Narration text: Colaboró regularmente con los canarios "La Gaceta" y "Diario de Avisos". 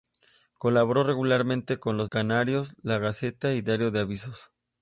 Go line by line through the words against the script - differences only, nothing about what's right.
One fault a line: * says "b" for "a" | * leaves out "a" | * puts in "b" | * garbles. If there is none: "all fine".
all fine